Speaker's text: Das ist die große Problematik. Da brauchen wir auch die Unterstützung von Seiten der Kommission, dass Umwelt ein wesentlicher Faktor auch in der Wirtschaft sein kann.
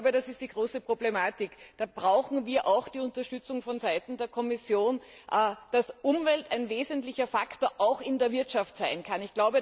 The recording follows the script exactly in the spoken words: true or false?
true